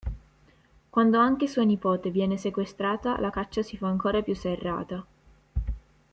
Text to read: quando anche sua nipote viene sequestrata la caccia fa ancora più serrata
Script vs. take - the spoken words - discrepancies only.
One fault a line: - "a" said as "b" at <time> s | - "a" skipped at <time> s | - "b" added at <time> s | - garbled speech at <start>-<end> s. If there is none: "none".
- "si" added at 3.6 s